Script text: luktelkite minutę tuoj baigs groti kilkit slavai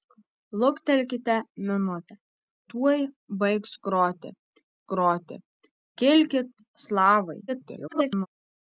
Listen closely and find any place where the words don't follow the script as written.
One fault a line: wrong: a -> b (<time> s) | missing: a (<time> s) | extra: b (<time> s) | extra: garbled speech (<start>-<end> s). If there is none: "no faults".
extra: groti (4.9 s)
extra: garbled speech (7.5-8.3 s)